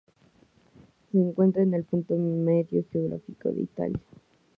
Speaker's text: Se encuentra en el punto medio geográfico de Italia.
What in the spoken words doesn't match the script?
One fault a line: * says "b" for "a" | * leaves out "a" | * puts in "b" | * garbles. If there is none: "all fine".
all fine